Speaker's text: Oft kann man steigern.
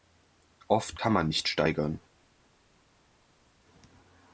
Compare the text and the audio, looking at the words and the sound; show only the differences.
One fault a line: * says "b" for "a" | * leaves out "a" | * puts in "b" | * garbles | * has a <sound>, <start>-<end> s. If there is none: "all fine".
* puts in "nicht"